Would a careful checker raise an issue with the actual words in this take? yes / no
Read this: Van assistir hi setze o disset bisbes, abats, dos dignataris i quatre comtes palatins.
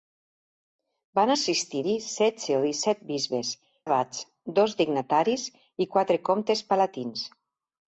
no